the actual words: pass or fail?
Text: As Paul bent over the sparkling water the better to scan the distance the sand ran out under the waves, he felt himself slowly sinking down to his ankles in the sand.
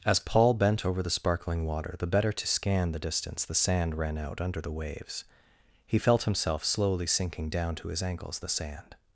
fail